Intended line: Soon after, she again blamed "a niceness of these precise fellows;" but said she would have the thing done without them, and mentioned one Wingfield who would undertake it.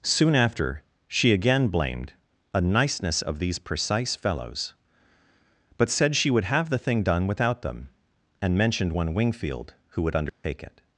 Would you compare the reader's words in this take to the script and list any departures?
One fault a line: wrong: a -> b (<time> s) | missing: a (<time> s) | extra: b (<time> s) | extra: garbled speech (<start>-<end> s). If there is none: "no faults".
no faults